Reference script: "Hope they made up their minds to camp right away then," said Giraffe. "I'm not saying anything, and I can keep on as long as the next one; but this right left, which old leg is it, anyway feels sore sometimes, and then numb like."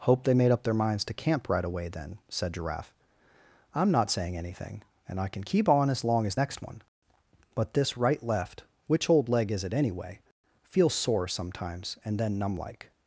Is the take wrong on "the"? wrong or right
wrong